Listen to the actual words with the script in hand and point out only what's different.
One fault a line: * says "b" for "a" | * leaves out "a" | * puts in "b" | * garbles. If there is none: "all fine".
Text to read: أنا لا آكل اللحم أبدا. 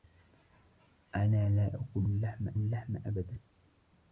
* puts in "اللحم"